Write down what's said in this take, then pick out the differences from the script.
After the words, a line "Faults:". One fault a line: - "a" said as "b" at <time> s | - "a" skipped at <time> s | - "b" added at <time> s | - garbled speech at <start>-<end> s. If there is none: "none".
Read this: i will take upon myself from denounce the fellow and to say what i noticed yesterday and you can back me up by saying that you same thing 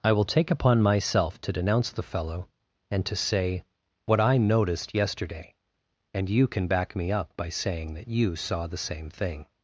i will take upon myself to denounce the fellow and to say what i noticed yesterday and you can back me up by saying that you saw the same thing
Faults:
- "from" said as "to" at 1.4 s
- "saw the" added at 8.4 s